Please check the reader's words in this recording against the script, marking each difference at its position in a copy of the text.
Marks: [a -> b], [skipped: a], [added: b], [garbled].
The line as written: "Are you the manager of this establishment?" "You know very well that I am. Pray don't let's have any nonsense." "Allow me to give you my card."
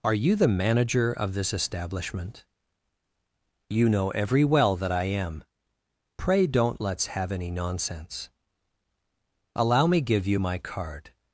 "Are you the manager of this establishment?" "You know [very -> every] well that I am. Pray don't let's have any nonsense." "Allow me [skipped: to] give you my card."